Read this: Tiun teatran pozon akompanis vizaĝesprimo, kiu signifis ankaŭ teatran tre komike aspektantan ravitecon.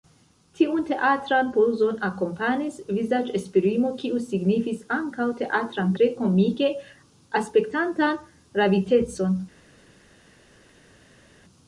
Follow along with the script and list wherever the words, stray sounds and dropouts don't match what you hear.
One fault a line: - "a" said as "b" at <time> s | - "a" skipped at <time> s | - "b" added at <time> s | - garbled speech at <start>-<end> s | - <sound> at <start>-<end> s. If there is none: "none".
none